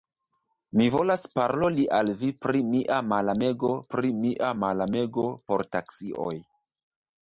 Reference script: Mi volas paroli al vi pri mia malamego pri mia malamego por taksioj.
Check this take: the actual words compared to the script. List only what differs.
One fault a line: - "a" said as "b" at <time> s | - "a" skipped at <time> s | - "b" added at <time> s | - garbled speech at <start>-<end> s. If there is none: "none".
none